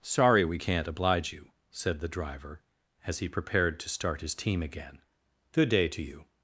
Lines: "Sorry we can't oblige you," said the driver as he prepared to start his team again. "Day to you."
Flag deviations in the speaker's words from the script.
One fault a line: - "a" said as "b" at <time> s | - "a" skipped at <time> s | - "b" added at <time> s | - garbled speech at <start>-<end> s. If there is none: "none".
- "Good" added at 5.5 s